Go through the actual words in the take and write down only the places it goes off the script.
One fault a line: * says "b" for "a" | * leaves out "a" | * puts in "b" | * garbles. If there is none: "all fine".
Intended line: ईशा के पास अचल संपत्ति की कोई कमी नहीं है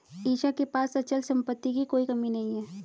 all fine